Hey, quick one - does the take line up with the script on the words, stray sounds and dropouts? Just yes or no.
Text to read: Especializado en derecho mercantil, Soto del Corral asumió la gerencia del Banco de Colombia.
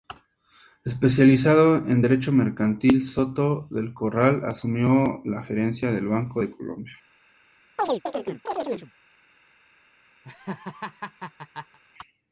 no